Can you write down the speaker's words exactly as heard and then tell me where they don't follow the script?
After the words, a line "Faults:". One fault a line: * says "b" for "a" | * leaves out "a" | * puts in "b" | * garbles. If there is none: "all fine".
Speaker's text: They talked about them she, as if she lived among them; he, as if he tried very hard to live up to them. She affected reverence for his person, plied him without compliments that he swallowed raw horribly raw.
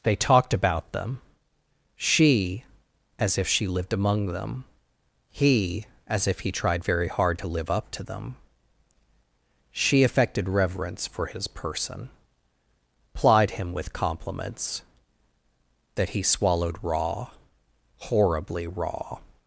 They talked about them she, as if she lived among them; he, as if he tried very hard to live up to them. She affected reverence for his person, plied him with compliments that he swallowed raw horribly raw.
Faults:
* says "with" for "without"